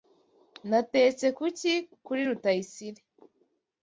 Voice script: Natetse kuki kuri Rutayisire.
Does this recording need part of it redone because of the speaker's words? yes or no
no